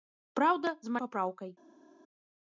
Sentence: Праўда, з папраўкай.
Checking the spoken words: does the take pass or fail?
pass